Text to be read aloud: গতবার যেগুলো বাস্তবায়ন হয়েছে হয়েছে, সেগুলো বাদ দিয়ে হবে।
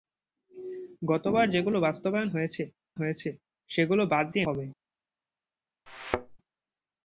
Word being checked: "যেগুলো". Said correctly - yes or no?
yes